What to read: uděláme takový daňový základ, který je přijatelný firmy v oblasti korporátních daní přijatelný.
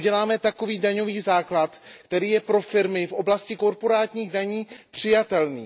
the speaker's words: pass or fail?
fail